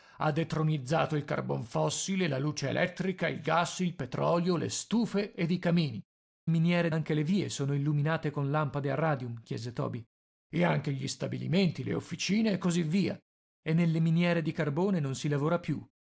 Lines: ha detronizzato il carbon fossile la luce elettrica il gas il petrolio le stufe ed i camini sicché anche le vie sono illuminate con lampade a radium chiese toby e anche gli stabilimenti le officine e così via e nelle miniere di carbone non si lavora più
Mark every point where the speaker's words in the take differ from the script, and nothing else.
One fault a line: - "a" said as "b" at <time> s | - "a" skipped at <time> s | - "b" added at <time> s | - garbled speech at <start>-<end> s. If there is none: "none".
- "sicché" said as "miniere" at 6.5 s